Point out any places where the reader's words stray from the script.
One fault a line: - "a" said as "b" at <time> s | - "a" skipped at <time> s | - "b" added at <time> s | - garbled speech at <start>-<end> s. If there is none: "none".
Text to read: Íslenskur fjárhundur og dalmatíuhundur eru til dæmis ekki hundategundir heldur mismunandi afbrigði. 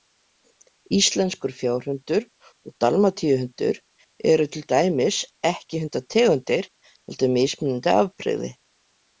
none